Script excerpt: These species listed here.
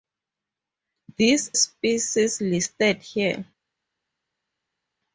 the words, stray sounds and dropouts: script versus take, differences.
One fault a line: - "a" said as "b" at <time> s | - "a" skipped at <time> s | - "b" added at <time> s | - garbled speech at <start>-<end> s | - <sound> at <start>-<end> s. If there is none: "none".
none